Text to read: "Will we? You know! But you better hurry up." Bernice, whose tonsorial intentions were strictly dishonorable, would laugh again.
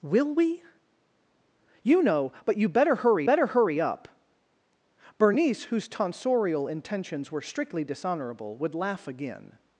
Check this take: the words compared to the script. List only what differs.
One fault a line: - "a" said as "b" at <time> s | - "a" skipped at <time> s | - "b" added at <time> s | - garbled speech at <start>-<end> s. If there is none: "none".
- "better hurry" added at 3.2 s